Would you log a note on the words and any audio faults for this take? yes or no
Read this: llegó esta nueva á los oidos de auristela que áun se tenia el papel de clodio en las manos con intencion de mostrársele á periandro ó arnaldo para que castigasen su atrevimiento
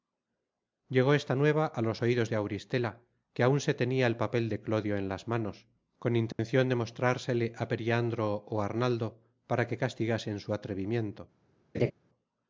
yes